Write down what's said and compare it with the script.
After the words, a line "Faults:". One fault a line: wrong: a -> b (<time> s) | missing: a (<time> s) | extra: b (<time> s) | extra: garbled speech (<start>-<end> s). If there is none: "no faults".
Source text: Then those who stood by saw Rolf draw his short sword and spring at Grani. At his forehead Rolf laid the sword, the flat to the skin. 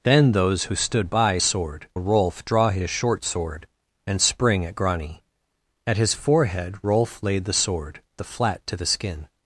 Then those who stood by sword Rolf draw his short sword and spring at Grani. At his forehead Rolf laid the sword, the flat to the skin.
Faults:
wrong: saw -> sword (1.4 s)